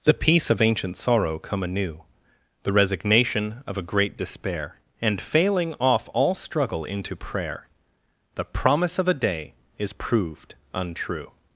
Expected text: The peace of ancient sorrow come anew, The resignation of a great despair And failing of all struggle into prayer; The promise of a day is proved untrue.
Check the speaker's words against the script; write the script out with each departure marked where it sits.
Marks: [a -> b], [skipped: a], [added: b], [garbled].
The peace of ancient sorrow come anew, The resignation of a great despair And failing [of -> off] all struggle into prayer; The promise of a day is proved untrue.